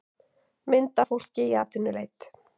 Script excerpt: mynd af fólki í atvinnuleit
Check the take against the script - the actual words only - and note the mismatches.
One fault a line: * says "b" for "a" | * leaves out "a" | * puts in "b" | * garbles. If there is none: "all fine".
all fine